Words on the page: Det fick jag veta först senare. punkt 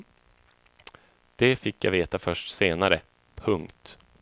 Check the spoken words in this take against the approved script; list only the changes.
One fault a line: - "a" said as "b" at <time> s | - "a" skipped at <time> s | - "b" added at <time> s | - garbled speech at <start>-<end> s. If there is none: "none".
none